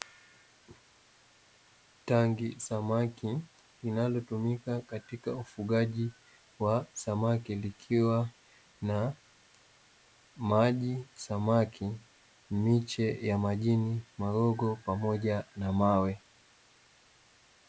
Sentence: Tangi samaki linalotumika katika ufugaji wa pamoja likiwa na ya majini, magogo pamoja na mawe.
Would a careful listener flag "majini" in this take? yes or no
no